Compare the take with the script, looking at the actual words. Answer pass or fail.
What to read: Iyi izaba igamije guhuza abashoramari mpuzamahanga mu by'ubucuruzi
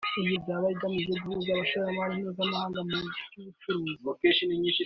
pass